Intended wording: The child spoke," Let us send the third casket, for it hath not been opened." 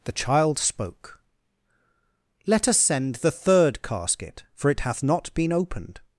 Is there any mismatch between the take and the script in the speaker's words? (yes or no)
no